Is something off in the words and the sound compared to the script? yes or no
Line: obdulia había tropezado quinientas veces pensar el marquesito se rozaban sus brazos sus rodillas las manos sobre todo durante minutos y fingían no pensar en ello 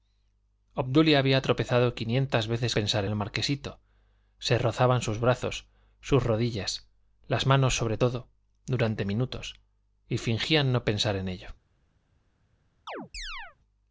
yes